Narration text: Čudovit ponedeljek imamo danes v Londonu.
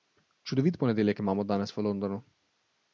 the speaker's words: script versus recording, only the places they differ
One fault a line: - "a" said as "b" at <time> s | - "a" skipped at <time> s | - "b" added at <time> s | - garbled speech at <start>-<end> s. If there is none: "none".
none